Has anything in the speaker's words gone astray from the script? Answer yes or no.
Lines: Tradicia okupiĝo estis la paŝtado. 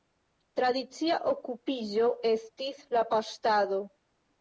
no